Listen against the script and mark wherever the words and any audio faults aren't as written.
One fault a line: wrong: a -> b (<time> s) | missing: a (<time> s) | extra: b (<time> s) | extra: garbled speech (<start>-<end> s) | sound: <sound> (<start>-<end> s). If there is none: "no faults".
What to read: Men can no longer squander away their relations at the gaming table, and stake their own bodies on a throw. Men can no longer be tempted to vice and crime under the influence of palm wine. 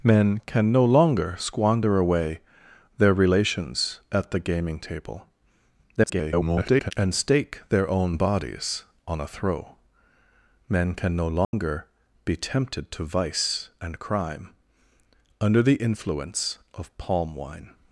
extra: garbled speech (6.0-6.9 s)
sound: dropout (11.4-11.5 s)